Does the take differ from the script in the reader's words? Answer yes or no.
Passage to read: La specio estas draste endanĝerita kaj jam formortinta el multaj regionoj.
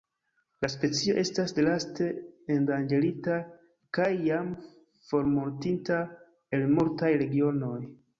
no